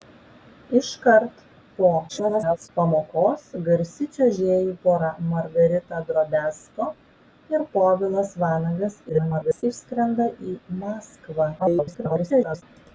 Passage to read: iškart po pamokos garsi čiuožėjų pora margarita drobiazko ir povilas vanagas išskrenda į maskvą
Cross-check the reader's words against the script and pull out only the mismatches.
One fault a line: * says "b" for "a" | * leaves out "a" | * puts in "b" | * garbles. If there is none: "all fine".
* garbles
* garbles
* garbles